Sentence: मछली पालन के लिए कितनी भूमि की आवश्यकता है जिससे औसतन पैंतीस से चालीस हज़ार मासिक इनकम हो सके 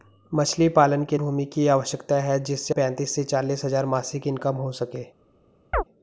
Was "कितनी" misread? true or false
true